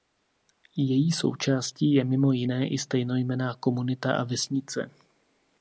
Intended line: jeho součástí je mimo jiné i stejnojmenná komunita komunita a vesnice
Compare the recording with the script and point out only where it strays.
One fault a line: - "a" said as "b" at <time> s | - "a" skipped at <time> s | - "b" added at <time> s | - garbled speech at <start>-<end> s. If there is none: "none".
- "jeho" said as "její" at 0.8 s
- "komunita" skipped at 4.2 s